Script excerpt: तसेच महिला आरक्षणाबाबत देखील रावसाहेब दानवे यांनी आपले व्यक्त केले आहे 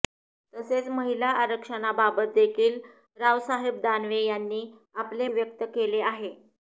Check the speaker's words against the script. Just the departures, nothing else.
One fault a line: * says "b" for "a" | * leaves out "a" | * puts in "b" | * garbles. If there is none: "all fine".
all fine